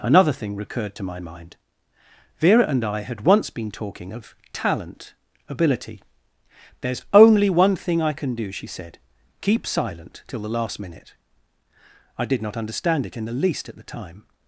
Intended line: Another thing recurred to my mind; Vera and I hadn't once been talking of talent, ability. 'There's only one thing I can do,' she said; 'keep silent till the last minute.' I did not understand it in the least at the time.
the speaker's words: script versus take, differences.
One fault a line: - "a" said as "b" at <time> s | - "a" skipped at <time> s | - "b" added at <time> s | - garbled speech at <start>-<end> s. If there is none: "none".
- "hadn't" said as "had" at 3.0 s